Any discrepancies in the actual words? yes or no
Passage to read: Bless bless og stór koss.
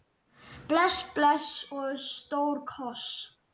no